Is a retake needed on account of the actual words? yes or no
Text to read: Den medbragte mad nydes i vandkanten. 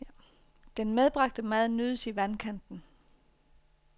no